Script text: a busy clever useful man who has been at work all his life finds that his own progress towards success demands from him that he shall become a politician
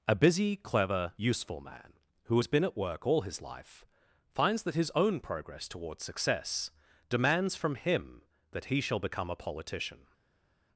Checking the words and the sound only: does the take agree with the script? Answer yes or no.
yes